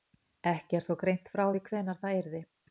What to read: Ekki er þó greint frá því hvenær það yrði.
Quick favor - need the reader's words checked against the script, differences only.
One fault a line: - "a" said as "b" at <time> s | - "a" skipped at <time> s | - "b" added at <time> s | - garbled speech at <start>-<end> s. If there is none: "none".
none